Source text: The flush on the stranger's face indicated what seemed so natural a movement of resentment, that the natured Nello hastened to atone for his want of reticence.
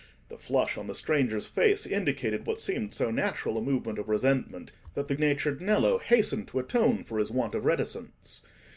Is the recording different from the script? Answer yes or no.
no